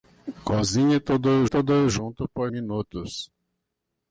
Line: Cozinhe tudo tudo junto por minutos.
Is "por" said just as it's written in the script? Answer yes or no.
yes